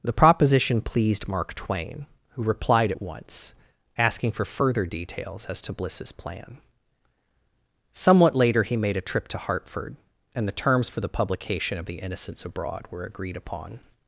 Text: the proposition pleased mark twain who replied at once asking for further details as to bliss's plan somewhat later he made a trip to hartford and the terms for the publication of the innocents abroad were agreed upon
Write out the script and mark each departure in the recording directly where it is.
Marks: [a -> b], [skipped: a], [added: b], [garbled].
the proposition pleased mark twain who replied at once asking for further details as to bliss's plan somewhat later he made a trip to hartford and the terms for the publication of the innocents abroad were agreed upon